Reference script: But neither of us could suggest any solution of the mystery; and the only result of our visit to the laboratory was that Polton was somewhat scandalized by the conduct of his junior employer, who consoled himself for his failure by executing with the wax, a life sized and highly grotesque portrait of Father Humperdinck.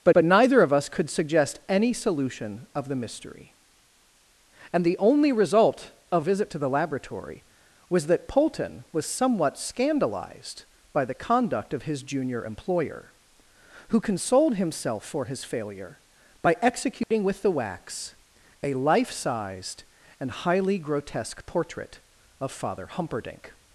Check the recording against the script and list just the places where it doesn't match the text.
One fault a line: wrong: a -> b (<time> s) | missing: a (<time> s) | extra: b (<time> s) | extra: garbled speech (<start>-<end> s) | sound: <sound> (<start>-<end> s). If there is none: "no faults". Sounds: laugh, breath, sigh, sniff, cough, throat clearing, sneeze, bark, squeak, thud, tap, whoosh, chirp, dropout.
extra: but (0.1 s)
missing: our (6.3 s)
sound: dropout (17.0-17.1 s)